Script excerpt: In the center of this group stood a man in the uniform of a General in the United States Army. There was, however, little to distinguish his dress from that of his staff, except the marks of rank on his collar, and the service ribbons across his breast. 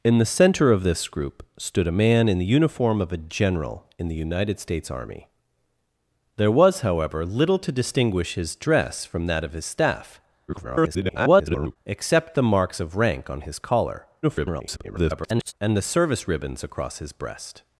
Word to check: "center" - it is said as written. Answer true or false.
true